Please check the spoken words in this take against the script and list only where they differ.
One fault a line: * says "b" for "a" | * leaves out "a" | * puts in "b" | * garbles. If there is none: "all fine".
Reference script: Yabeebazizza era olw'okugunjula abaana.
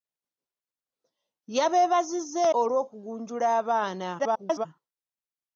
* leaves out "era"
* garbles